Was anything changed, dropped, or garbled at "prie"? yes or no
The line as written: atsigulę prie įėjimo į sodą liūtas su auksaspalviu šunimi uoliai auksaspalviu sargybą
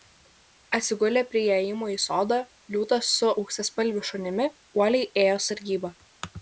no